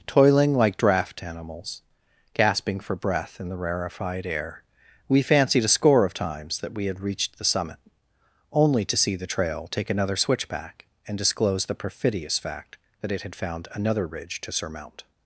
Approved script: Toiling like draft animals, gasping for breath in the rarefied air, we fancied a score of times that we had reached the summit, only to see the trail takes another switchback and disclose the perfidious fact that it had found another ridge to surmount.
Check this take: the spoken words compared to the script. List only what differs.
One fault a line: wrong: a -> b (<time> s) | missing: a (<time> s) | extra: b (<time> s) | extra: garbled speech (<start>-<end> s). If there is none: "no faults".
wrong: takes -> take (9.7 s)